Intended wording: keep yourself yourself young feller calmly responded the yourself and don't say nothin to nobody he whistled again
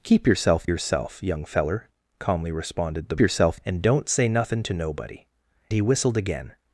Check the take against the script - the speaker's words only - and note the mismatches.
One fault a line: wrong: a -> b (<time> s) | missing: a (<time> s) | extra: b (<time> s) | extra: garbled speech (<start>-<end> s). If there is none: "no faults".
no faults